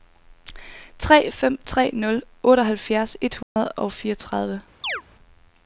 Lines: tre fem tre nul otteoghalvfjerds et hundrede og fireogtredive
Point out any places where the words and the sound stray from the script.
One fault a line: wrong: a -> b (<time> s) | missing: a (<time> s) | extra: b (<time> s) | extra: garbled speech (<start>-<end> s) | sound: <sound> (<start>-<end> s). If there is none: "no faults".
sound: dropout (3.4-3.6 s)
sound: chirp (4.8-5.0 s)